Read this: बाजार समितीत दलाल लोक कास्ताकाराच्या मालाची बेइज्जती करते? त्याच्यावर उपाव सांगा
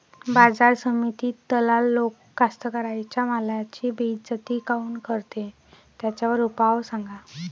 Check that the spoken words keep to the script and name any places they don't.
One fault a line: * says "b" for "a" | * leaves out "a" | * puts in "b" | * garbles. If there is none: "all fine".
* puts in "काऊन"